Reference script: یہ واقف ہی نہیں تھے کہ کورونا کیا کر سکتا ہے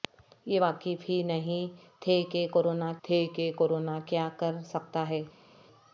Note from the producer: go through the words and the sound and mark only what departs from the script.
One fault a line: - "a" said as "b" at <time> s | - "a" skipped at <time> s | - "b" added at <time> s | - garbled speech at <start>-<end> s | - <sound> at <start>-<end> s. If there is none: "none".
- "تھے کہ کورونا" added at 3.0 s